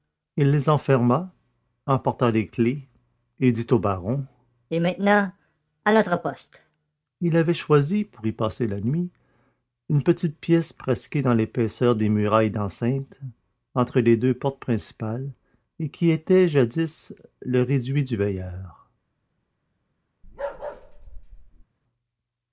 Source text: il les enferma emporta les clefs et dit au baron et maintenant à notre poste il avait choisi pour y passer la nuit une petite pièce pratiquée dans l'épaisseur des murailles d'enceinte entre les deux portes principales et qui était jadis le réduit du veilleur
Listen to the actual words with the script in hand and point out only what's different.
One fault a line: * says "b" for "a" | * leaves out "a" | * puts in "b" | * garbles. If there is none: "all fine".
all fine